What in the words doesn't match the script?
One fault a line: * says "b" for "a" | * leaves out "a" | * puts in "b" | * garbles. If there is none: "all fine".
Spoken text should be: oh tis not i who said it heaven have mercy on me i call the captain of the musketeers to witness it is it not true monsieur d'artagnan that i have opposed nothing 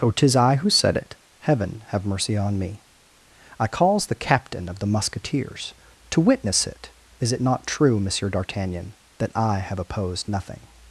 * leaves out "not"
* says "calls" for "call"